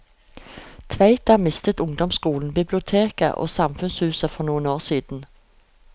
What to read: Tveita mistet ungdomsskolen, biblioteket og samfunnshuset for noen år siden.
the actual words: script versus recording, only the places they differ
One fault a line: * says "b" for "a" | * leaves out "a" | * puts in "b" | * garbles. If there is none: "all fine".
all fine